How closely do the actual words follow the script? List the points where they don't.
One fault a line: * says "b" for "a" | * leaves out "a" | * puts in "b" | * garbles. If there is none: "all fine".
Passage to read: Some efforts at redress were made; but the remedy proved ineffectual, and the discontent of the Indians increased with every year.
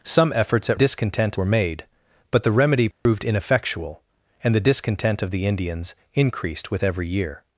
* says "discontent" for "redress"